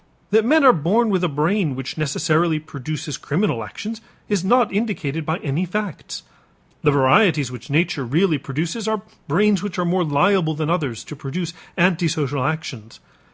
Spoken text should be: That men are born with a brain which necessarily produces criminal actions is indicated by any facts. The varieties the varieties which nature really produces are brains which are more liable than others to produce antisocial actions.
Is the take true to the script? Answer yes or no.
no